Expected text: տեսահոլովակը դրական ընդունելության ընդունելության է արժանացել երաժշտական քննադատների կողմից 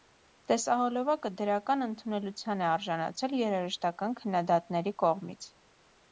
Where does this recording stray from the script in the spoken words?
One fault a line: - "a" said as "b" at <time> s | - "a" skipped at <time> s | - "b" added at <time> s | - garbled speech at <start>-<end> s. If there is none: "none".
- "ընդունելության" skipped at 2.6 s